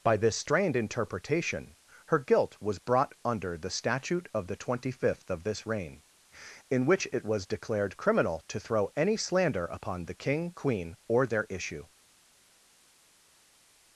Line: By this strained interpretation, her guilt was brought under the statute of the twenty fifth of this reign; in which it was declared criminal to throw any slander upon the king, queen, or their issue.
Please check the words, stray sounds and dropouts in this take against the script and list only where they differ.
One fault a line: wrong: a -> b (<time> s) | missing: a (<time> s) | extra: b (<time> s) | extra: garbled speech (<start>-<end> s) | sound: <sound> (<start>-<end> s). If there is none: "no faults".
no faults